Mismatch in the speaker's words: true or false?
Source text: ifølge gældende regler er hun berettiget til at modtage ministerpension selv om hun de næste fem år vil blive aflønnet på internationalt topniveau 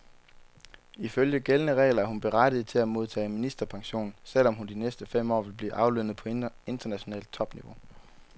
false